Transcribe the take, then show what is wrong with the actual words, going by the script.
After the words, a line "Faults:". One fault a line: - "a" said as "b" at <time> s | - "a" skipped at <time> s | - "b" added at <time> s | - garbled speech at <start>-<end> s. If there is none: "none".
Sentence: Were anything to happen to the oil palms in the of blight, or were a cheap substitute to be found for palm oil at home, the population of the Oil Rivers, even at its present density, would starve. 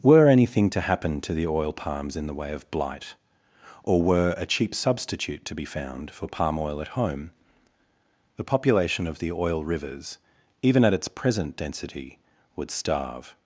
Were anything to happen to the oil palms in the way of blight, or were a cheap substitute to be found for palm oil at home, the population of the Oil Rivers, even at its present density, would starve.
Faults:
- "way" added at 2.3 s